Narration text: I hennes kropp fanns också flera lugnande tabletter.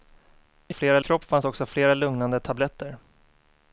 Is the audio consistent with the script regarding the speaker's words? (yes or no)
no